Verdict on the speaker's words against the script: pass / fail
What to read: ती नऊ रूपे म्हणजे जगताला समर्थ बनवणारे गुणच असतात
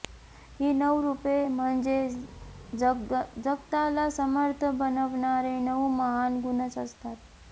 fail